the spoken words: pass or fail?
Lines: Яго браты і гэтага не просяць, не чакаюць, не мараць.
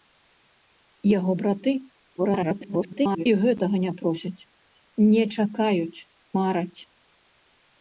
fail